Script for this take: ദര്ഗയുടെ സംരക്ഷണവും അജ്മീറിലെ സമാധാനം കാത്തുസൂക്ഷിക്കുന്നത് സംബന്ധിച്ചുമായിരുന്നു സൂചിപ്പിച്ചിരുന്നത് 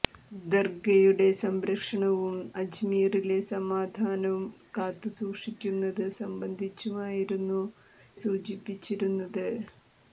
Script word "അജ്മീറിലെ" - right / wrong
right